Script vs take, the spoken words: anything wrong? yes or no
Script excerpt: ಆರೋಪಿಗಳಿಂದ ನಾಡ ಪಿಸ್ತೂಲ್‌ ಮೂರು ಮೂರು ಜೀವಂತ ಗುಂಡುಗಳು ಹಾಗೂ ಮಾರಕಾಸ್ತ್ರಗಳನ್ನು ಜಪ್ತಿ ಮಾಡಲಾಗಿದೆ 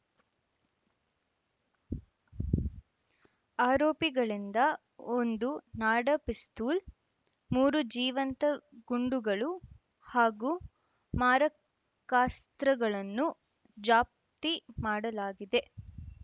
yes